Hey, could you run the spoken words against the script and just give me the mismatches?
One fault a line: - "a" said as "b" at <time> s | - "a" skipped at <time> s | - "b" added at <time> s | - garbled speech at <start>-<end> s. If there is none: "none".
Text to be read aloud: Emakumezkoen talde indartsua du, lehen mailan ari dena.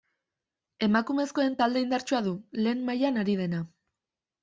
none